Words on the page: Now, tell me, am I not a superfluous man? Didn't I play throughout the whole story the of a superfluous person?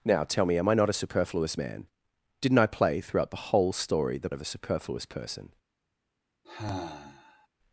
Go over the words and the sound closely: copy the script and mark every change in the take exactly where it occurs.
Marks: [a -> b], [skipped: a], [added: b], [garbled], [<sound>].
Now, tell me, am I not a superfluous man? Didn't I play throughout the whole story the of a superfluous person? [sigh]